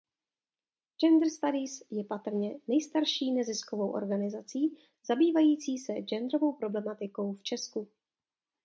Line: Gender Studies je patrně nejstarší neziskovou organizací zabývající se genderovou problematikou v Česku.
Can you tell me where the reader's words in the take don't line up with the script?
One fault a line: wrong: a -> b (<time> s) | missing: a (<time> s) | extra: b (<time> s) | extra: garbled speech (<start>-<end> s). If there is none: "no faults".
no faults